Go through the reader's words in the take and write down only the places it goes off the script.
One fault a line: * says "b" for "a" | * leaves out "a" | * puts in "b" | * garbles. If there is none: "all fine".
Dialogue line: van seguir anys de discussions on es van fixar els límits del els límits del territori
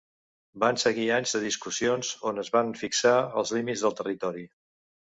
* leaves out "els límits del"